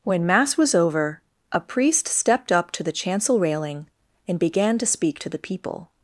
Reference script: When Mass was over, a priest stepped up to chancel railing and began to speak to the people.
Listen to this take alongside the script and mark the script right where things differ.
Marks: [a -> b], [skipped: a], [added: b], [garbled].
When Mass was over, a priest stepped up to [added: the] chancel railing and began to speak to the people.